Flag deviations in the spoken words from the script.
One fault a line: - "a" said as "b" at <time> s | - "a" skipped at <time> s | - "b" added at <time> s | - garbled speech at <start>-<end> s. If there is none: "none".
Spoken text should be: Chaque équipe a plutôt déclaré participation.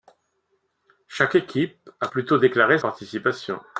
none